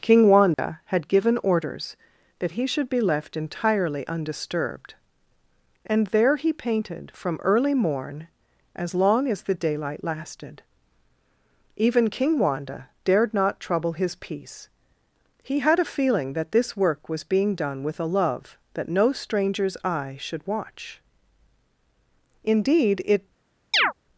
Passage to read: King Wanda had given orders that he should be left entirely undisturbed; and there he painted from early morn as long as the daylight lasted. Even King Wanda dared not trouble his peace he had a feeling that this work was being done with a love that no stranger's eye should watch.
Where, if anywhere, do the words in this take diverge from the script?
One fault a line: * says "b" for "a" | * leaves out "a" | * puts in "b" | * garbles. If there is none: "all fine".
* puts in "Indeed it"